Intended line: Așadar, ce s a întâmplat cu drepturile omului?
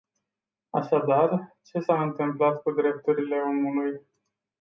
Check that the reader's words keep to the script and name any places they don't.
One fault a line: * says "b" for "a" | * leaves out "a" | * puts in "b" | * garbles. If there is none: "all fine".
all fine